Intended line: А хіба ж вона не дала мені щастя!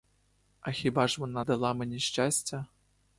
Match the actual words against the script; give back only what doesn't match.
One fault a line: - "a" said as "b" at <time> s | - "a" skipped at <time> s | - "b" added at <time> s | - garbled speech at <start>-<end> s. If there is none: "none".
- "не" skipped at 1.4 s